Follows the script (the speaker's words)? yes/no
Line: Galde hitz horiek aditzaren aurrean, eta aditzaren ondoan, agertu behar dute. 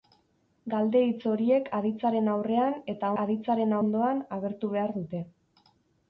yes